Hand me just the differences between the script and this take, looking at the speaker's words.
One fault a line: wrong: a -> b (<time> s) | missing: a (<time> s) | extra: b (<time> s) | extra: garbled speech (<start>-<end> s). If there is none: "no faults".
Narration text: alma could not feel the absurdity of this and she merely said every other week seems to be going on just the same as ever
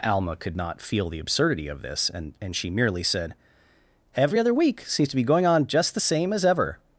extra: and (2.4 s)